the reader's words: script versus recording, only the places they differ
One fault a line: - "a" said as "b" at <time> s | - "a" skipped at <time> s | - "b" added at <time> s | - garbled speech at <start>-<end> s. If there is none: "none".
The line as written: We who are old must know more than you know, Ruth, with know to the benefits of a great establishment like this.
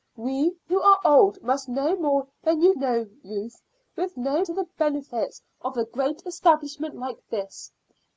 none